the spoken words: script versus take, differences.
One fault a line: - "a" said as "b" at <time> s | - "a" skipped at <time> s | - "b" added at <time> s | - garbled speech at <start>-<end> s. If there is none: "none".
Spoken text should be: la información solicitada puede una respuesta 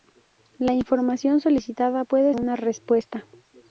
none